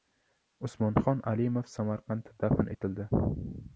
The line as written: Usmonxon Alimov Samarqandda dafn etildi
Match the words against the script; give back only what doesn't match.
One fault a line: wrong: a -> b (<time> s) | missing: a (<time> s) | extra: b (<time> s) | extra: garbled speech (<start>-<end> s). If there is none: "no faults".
no faults